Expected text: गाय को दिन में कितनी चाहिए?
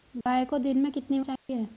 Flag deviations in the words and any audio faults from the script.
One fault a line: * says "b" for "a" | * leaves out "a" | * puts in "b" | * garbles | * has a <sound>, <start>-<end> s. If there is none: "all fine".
* has a dropout, 0.2-0.3 s
* has a dropout, 1.4-1.5 s